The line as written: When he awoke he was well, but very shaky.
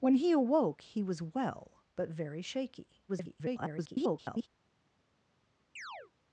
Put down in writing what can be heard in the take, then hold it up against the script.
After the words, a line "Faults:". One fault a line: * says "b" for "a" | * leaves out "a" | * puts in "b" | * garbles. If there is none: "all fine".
When he awoke he was well, but very shaky. [garbled]
Faults:
* garbles